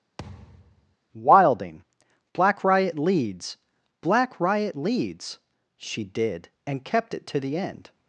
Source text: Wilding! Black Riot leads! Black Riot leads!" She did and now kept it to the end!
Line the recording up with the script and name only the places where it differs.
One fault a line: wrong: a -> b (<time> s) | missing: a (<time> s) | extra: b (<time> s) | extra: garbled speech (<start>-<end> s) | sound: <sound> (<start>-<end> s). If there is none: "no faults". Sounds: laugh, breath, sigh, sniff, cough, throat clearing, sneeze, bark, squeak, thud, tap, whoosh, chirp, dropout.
sound: thud (0.2-1.0 s)
missing: now (6.9 s)